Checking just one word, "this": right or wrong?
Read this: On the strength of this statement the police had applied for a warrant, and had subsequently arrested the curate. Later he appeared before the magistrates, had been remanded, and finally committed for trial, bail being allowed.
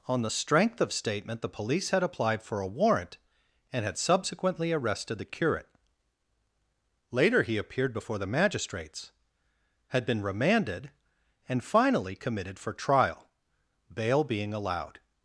wrong